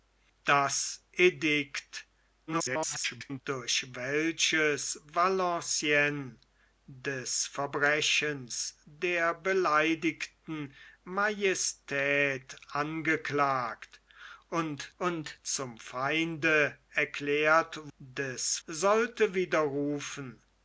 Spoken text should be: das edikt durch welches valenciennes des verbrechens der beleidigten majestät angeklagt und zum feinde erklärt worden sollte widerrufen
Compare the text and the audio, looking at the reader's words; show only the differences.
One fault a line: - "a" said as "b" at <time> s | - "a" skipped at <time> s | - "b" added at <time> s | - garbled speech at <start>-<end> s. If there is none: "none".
- garbled speech at 2.5-3.4 s
- "und" added at 15.0 s
- "worden" said as "des" at 18.0 s